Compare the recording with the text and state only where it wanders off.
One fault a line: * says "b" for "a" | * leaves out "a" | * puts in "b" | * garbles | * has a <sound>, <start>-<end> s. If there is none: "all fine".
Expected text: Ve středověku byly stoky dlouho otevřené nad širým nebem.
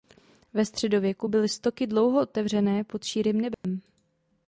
* says "pod" for "nad"
* has a dropout, 3.5-3.6 s